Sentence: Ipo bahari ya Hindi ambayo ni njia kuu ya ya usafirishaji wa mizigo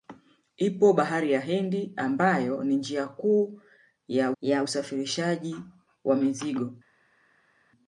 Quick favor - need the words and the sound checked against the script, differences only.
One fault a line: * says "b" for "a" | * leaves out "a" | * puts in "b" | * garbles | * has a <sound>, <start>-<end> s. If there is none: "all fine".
all fine